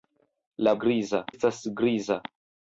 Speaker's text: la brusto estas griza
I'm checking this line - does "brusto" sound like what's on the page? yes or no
no